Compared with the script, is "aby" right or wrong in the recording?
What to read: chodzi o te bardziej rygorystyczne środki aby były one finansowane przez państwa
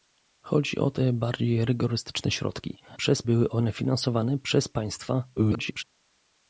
wrong